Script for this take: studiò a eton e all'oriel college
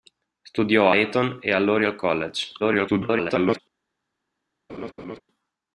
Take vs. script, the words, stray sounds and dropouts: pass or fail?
fail